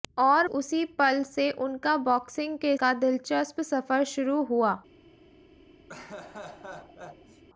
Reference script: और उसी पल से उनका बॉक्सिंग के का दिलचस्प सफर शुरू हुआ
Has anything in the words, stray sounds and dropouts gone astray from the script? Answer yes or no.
yes